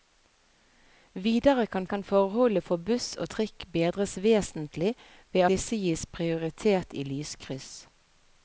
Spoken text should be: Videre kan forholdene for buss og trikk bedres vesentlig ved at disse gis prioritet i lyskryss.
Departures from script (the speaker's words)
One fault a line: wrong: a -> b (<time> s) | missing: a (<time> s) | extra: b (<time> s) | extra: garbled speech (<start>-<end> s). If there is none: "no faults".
extra: kan (1.8 s)
missing: at (5.4 s)